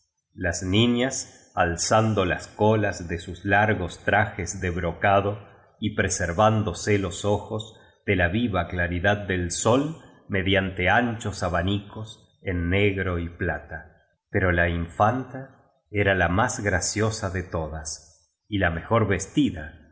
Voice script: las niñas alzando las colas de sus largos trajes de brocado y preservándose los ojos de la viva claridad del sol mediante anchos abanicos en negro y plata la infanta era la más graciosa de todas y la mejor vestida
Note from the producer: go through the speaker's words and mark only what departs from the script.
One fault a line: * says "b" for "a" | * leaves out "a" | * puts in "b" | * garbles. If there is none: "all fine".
* puts in "pero"